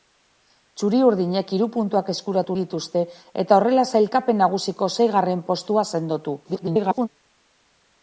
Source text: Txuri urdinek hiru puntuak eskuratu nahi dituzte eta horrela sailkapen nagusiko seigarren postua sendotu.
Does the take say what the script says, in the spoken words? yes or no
no